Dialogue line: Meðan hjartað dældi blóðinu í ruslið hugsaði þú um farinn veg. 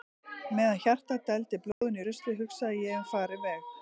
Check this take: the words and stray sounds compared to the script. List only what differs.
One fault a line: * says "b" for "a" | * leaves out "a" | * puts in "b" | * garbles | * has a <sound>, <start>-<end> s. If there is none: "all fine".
* has a dropout, 1.7-1.8 s
* says "ég" for "þú"